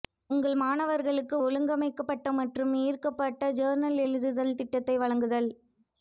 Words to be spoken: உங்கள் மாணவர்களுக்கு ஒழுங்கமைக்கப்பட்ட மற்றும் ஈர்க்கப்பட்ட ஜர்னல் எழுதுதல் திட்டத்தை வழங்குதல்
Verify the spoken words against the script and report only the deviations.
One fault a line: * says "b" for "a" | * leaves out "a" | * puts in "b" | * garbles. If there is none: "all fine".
all fine